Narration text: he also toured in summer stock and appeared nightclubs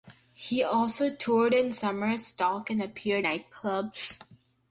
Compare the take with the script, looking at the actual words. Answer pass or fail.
pass